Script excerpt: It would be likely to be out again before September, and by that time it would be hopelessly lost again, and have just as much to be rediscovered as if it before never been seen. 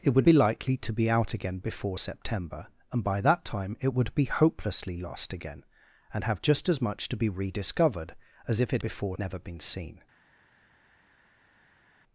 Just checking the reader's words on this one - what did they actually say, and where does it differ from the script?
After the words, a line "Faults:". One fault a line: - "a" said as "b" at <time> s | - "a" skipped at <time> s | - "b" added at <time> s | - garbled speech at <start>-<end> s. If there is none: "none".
It would be likely to be out again before September, and by that time it would be hopelessly lost again, and have just as much to be rediscovered as if it before never been seen.
Faults:
none